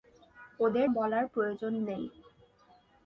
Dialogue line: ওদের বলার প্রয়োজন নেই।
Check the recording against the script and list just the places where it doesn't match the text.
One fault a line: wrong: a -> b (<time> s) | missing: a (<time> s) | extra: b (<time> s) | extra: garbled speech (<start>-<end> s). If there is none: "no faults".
no faults